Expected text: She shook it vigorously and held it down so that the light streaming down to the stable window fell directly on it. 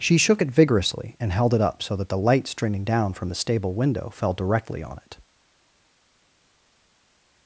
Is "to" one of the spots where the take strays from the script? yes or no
yes